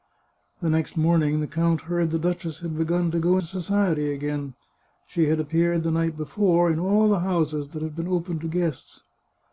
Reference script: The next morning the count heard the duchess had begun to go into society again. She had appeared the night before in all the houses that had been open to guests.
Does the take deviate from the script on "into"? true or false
true